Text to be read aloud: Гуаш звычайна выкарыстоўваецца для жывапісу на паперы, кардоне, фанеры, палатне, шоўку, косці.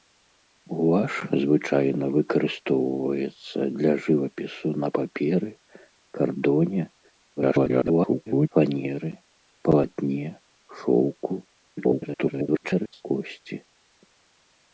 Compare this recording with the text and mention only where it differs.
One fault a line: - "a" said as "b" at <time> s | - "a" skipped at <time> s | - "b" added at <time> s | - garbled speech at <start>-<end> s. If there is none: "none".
- garbled speech at 7.4-8.5 s
- garbled speech at 11.8-13.0 s